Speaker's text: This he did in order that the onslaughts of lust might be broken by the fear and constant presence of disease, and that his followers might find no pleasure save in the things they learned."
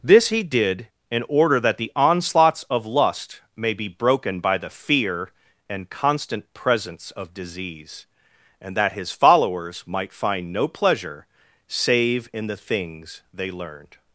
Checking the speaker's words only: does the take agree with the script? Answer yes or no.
no